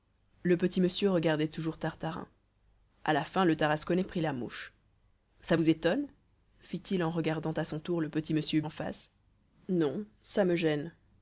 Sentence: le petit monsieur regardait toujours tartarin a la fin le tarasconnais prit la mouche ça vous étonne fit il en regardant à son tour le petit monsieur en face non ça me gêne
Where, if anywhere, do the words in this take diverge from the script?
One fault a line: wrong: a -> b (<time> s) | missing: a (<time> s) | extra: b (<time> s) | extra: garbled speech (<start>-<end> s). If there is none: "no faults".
no faults